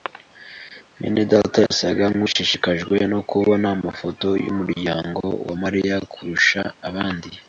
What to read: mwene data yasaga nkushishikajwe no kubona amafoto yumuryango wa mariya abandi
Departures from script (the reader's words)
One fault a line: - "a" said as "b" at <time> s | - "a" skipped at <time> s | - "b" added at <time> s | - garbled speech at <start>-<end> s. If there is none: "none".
- "kurusha" added at 6.1 s